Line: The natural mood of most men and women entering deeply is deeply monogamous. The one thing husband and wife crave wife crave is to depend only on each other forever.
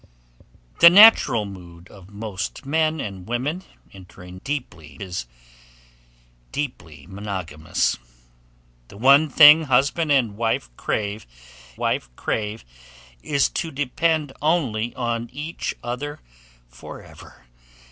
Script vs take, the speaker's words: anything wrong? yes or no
no